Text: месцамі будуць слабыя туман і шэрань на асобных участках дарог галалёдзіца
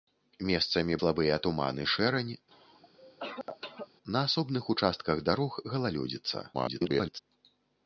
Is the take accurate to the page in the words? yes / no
no